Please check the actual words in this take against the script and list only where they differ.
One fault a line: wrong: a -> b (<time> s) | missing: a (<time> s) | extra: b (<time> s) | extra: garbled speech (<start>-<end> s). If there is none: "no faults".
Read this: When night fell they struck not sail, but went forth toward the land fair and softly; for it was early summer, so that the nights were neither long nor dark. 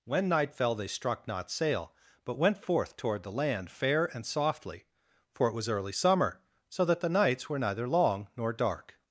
no faults